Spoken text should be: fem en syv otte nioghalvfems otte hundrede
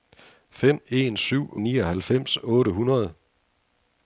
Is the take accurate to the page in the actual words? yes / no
no